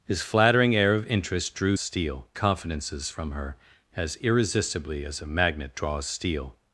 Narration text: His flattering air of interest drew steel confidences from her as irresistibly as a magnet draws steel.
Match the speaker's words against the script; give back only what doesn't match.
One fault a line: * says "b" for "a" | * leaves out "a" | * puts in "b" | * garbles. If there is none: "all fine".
all fine